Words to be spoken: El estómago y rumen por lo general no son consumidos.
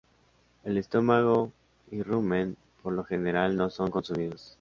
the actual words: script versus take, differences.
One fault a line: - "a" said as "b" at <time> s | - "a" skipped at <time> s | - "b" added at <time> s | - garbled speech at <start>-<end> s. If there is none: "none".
none